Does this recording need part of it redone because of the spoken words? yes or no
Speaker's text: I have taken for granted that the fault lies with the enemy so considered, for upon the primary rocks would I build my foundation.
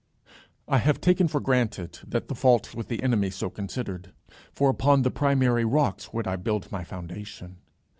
yes